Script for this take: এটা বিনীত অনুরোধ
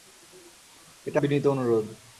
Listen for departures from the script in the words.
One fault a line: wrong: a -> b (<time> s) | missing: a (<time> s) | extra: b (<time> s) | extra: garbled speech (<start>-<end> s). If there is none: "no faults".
no faults